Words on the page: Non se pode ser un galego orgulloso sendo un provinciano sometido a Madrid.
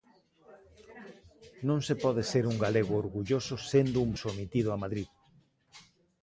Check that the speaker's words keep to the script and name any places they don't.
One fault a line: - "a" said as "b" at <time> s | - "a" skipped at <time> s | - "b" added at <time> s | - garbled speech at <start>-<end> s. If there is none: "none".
- "provinciano" skipped at 4.1 s